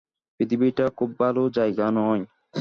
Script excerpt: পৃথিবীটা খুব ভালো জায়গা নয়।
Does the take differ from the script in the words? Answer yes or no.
no